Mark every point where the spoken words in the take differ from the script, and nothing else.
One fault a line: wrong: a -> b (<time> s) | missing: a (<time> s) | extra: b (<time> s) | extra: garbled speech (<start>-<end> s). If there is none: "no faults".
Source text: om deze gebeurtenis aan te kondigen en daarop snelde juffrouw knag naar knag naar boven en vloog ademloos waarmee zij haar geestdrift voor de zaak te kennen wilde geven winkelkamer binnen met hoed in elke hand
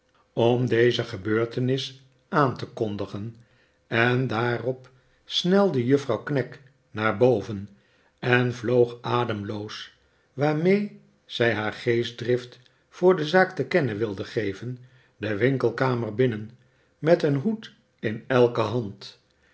missing: knag naar (7.2 s)
extra: de (15.2 s)
extra: een (17.2 s)